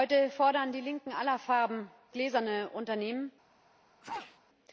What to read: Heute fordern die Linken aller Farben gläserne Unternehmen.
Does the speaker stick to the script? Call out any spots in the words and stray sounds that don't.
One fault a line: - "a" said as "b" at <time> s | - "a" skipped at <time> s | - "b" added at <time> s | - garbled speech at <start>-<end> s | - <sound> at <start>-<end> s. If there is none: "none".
- sneeze at 4.0-4.4 s